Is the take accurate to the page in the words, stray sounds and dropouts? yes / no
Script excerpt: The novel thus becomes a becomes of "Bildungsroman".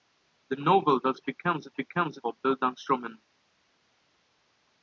yes